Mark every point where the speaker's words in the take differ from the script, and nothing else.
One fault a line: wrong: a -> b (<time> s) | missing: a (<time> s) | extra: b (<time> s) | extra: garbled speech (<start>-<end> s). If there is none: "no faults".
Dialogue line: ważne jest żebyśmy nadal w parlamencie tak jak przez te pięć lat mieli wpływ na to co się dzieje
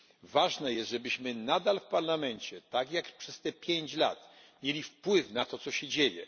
no faults